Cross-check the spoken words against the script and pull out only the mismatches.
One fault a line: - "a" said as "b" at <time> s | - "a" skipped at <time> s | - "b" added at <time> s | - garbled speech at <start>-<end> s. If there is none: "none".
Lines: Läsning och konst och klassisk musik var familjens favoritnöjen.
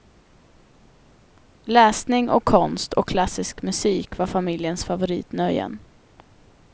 none